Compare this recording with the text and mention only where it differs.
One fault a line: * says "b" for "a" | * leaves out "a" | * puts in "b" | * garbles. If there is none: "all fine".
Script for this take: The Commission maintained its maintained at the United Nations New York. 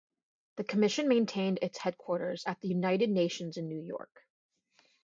* says "headquarters" for "maintained"
* puts in "in"